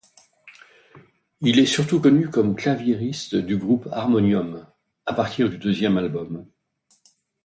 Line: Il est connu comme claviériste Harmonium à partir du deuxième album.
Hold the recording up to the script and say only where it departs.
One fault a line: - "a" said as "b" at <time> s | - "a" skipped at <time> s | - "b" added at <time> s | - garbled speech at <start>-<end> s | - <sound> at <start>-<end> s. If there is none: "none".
- "surtout" added at 1.7 s
- "du groupe" added at 3.3 s